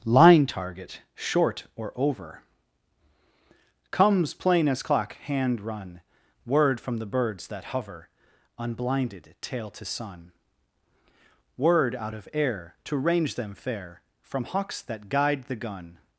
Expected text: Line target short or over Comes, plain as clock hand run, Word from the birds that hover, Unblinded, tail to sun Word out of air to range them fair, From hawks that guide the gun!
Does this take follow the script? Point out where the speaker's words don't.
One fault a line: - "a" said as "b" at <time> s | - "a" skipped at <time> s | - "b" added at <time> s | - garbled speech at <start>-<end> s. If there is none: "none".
none